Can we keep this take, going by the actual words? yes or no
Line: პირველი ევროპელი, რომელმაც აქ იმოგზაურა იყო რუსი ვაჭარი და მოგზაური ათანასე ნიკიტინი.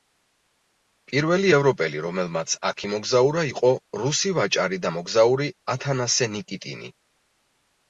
yes